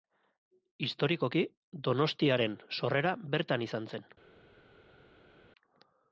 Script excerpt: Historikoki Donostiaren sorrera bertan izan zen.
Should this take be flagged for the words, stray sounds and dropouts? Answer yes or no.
no